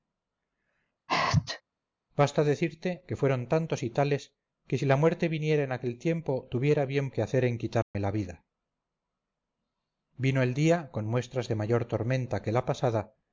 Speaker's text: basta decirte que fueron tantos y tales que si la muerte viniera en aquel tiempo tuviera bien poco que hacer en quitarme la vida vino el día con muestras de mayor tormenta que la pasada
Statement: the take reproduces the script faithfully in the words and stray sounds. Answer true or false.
false